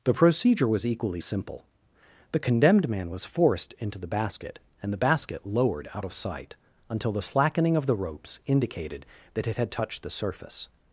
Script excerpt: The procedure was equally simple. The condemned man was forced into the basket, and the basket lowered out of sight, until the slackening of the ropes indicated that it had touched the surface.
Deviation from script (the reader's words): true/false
false